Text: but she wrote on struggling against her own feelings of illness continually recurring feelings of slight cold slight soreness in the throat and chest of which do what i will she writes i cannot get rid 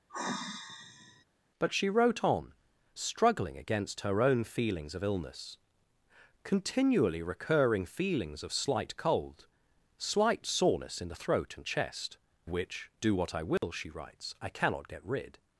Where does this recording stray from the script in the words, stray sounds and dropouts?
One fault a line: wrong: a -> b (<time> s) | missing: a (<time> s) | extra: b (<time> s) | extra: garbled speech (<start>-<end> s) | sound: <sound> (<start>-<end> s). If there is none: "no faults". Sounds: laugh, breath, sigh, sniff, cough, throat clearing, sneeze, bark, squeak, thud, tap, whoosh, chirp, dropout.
sound: sigh (0.1-1.2 s)
missing: of (12.2 s)
sound: dropout (13.6-13.6 s)